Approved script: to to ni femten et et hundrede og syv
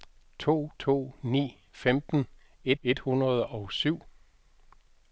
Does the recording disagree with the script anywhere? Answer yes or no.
no